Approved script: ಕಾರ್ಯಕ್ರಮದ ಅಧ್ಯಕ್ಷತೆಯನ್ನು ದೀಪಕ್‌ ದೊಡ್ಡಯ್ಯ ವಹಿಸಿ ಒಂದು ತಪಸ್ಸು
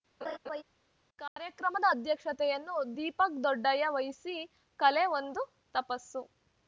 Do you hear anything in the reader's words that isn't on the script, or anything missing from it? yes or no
yes